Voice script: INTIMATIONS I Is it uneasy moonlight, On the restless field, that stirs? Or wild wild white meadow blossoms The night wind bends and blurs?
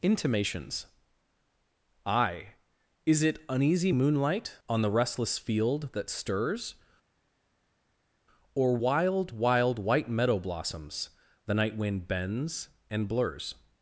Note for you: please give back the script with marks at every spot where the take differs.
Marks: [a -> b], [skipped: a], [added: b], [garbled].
INTIMATIONS I Is it uneasy moonlight, On the restless field, that stirs? Or wild wild white meadow blossoms The night wind bends and blurs?